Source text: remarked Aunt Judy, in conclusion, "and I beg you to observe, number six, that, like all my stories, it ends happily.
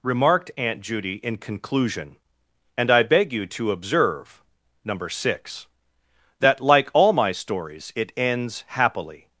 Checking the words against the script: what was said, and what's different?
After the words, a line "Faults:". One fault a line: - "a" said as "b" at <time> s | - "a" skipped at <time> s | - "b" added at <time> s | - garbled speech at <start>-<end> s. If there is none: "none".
remarked Aunt Judy, in conclusion, "and I beg you to observe, number six, that, like all my stories, it ends happily.
Faults:
none